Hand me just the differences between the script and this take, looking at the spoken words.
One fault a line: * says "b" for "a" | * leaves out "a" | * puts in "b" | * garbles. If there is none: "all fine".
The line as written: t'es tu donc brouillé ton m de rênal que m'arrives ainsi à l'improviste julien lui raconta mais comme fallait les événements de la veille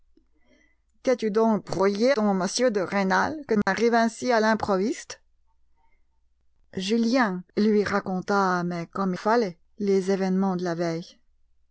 all fine